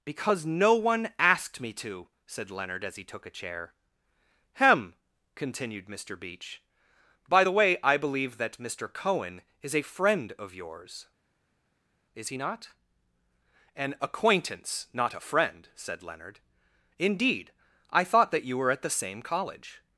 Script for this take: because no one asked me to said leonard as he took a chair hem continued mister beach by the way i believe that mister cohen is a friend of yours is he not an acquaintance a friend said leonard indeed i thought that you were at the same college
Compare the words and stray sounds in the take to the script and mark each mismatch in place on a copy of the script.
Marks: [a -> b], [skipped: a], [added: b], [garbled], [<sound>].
because no one asked me to said leonard as he took a chair hem continued mister beach by the way i believe that mister cohen is a friend of yours is he not an acquaintance [added: not] a friend said leonard indeed i thought that you were at the same college